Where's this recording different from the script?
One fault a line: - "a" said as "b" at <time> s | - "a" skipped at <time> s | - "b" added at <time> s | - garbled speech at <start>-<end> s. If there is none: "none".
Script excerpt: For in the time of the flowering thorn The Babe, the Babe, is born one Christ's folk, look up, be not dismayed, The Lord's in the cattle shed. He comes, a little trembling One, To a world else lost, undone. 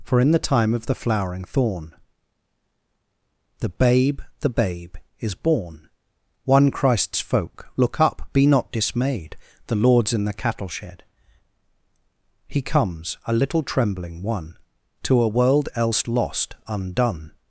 none